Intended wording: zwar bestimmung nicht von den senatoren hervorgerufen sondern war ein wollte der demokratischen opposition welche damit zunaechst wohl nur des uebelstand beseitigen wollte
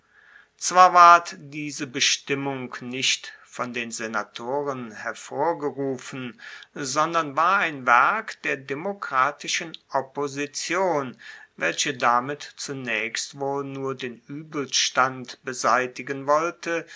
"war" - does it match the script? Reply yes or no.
yes